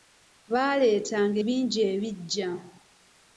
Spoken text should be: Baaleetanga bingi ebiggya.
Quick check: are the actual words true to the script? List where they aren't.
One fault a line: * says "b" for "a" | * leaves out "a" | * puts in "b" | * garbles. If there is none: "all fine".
all fine